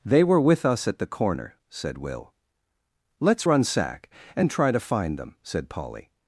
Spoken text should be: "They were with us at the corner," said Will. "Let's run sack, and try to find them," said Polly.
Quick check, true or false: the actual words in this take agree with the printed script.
true